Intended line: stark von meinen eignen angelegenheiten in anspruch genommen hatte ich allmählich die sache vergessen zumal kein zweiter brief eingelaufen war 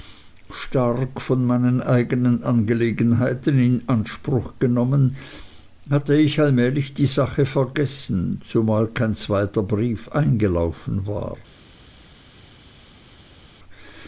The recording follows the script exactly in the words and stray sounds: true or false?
true